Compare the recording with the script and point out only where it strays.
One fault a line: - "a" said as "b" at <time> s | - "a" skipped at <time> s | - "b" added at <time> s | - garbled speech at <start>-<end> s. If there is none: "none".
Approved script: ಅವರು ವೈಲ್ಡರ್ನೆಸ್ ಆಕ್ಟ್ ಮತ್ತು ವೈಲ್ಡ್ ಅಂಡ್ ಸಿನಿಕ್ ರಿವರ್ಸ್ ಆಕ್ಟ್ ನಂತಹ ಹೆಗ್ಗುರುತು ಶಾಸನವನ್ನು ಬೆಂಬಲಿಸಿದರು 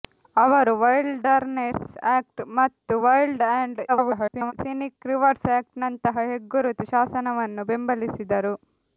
- garbled speech at 3.9-4.5 s